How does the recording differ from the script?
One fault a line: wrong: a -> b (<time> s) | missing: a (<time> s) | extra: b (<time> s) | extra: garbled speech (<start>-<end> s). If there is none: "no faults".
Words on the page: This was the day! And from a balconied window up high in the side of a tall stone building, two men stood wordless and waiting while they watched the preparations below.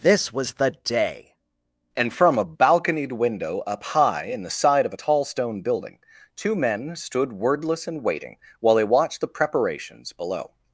no faults